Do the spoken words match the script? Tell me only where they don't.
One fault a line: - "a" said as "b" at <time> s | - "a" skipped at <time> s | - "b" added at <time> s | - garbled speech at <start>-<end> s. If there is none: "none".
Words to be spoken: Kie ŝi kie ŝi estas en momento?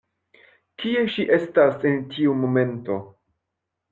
- "kie ŝi" skipped at 1.2 s
- "tiu" added at 2.2 s